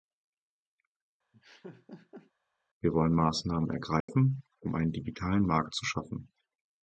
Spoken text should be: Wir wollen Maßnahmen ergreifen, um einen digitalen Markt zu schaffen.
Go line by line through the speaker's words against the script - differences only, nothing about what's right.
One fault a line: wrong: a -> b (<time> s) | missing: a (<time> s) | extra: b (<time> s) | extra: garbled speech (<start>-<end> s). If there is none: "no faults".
no faults